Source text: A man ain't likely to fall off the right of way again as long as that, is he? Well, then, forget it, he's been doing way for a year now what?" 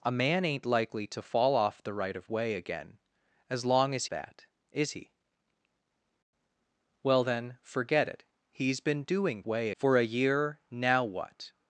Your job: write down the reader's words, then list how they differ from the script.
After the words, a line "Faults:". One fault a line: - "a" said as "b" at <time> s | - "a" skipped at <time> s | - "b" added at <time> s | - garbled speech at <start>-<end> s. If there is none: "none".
A man ain't likely to fall off the right of way again as long as that, is he? Well, then, forget it, he's been doing way for a year now what?"
Faults:
none